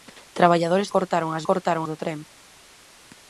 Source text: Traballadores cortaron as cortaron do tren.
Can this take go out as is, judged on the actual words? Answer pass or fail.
pass